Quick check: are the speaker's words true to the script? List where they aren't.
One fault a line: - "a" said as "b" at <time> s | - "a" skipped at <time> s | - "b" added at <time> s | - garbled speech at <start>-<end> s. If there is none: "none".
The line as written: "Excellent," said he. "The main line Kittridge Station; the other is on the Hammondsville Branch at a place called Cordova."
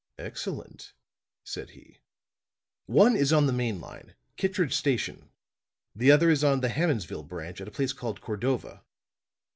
- "One is on" added at 2.9 s